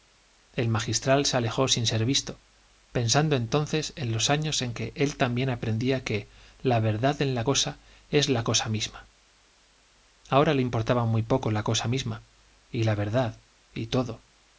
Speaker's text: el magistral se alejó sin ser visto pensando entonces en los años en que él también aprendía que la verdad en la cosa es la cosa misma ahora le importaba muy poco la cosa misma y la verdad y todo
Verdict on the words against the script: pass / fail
pass